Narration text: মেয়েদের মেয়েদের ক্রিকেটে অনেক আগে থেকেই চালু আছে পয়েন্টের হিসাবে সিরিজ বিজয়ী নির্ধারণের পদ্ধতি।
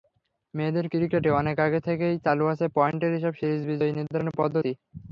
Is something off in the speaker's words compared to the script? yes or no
yes